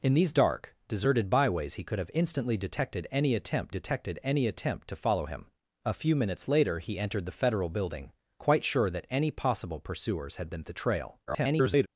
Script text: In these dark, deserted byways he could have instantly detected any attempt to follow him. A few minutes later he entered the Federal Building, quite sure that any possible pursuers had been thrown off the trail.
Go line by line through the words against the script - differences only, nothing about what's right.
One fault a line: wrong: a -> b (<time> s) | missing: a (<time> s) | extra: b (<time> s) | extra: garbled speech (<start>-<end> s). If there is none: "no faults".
extra: detected any attempt (3.7 s)
missing: thrown off (10.6 s)
extra: garbled speech (11.3-11.9 s)